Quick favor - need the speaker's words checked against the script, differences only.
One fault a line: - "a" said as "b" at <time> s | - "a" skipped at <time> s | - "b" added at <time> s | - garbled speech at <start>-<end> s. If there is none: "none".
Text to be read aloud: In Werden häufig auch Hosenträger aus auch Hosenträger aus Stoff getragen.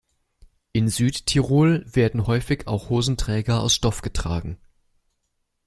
- "Südtirol" added at 0.9 s
- "auch Hosenträger aus" skipped at 3.7 s